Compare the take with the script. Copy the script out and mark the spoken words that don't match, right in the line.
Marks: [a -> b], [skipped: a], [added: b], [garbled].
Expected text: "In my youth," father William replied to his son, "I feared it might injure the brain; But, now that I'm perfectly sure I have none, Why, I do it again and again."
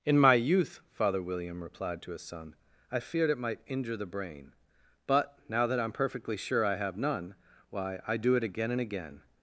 "In my youth," father William replied to his son, "I feared it might injure the brain; But, now that I'm perfectly sure I have none, Why, I do it again and again."